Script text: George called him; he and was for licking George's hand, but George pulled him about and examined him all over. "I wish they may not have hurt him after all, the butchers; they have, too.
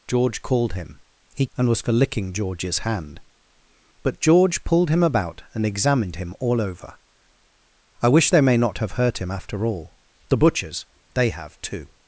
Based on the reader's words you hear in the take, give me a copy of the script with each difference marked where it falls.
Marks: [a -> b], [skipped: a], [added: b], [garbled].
George called him; he and was for licking George's hand, but George pulled him about and examined him all over. "I wish they may not have hurt him after all, the butchers; they have, too.